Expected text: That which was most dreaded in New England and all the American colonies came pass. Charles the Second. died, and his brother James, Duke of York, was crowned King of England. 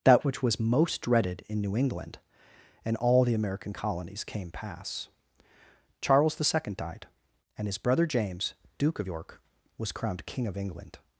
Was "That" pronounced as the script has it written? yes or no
yes